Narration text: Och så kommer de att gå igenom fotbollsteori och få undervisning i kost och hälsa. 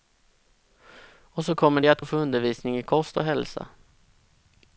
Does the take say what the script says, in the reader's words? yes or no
no